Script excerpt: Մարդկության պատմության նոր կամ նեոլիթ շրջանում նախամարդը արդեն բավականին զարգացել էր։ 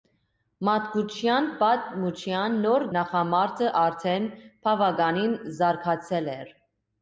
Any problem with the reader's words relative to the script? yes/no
yes